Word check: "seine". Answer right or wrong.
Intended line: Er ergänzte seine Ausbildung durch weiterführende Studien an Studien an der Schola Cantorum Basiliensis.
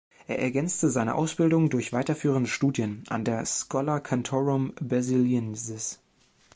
right